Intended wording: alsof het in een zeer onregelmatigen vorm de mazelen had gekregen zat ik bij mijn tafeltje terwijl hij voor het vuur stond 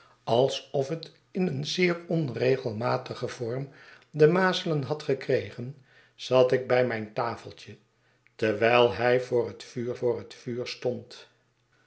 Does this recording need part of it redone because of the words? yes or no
yes